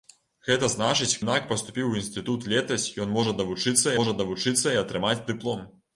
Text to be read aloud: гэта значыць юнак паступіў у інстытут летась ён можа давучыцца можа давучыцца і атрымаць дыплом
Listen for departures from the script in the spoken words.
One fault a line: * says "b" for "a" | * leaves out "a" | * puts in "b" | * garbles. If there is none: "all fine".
all fine